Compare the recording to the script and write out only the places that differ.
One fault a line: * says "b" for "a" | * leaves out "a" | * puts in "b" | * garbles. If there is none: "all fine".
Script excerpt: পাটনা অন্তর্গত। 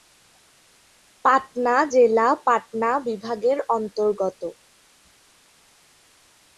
* puts in "জেলা পাটনা বিভাগের"